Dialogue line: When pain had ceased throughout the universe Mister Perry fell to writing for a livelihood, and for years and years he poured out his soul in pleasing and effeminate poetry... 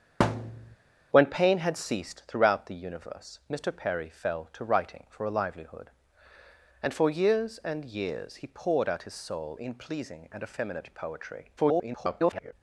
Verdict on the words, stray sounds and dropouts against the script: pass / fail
fail